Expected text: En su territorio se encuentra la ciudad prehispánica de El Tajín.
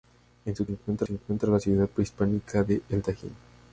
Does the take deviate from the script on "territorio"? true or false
true